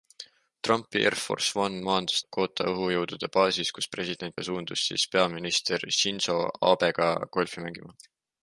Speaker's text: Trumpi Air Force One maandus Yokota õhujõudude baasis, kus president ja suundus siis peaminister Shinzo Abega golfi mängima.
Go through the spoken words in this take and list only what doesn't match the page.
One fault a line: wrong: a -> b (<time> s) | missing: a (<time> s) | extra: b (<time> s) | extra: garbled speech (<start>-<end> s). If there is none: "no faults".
no faults